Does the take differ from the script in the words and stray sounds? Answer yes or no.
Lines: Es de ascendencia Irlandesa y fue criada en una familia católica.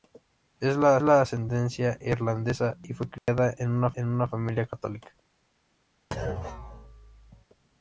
yes